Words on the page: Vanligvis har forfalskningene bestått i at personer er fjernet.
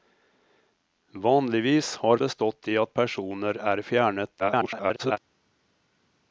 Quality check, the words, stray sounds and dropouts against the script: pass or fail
fail